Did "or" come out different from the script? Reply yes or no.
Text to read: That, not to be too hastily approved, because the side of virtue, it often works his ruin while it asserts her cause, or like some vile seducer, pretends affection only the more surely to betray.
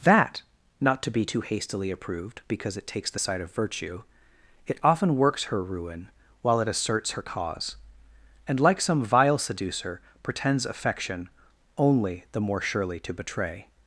yes